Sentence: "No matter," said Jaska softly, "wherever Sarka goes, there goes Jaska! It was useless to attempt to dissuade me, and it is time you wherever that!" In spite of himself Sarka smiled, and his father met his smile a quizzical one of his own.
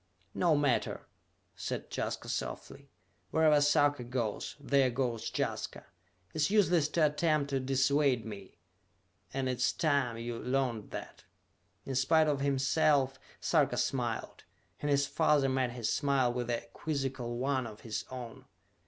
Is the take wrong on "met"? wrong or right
right